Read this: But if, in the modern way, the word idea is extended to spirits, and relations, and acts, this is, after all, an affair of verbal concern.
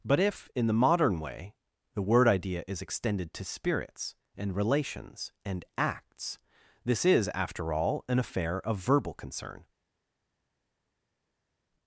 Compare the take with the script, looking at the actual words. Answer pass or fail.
pass